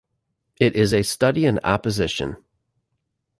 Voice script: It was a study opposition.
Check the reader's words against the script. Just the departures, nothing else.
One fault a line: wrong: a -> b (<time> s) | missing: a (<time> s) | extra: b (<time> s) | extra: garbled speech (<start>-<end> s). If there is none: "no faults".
wrong: was -> is (0.8 s)
extra: in (1.4 s)